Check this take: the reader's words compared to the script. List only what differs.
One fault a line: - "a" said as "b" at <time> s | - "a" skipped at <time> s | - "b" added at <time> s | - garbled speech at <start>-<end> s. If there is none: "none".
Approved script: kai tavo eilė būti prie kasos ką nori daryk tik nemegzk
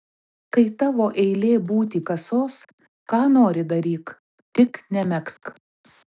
- "prie" skipped at 2.0 s